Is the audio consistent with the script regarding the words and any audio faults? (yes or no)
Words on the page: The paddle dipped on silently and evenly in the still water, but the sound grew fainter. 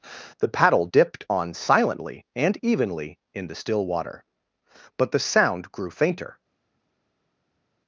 yes